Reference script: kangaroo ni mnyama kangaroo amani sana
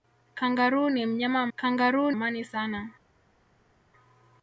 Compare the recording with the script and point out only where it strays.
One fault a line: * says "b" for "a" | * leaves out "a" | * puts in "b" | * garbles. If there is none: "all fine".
all fine